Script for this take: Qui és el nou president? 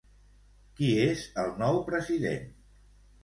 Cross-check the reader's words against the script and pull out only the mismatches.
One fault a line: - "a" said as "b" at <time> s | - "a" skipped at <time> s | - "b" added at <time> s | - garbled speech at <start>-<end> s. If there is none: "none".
none